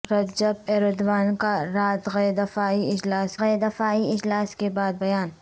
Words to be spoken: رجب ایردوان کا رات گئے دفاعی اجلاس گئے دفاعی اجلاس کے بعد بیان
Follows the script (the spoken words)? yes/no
yes